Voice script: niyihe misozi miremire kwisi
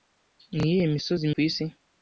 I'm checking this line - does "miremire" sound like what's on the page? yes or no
no